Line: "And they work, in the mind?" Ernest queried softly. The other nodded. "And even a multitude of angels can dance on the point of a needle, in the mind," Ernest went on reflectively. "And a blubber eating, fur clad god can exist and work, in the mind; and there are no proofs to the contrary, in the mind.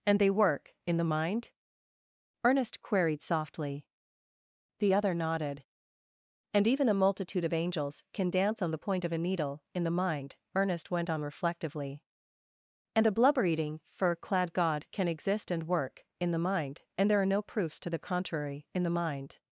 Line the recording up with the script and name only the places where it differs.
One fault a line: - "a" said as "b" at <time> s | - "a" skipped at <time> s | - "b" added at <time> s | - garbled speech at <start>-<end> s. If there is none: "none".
none